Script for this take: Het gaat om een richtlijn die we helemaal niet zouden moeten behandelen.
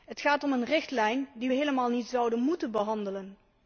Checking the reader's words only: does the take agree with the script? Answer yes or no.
yes